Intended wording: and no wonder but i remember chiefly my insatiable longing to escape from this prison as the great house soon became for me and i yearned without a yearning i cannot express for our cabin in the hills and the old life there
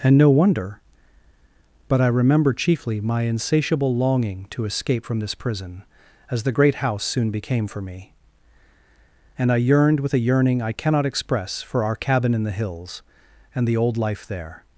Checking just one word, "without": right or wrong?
wrong